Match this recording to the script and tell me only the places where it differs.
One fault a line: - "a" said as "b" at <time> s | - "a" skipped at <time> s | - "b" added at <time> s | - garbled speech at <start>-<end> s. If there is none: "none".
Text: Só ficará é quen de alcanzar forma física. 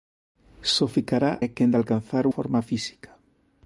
none